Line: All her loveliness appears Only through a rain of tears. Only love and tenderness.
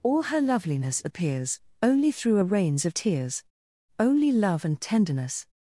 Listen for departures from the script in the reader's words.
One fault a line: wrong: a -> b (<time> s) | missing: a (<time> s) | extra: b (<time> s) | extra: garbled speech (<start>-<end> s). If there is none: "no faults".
wrong: rain -> rains (2.4 s)